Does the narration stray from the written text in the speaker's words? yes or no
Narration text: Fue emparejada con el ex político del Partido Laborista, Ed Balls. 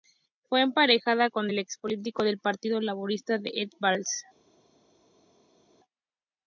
no